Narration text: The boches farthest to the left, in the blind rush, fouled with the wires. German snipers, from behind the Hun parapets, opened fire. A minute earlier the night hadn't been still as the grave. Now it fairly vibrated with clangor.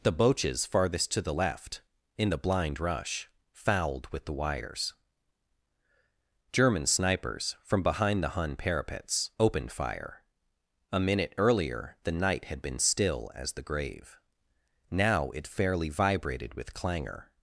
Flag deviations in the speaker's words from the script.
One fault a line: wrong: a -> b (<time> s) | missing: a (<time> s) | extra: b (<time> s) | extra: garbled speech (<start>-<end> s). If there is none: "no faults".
wrong: hadn't -> had (12.4 s)